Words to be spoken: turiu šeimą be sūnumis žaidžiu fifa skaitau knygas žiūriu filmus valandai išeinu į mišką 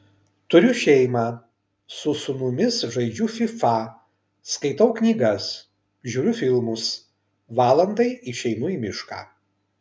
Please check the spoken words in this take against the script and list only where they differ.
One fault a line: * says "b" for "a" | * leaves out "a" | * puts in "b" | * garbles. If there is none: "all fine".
* says "su" for "be"